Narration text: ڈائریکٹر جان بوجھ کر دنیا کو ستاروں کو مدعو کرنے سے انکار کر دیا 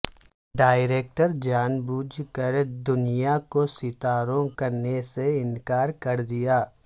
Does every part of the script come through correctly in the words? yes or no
no